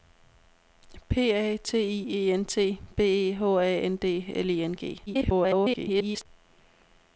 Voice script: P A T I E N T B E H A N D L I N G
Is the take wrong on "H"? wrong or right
right